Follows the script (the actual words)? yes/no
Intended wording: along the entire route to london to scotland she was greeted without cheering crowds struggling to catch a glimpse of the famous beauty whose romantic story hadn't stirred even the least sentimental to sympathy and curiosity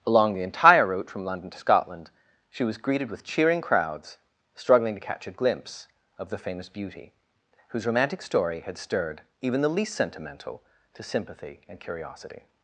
no